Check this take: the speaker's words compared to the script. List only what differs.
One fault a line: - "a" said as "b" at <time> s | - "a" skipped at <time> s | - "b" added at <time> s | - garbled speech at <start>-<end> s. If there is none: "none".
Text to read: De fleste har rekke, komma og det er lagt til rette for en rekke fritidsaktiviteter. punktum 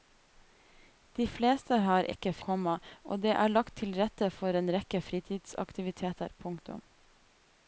none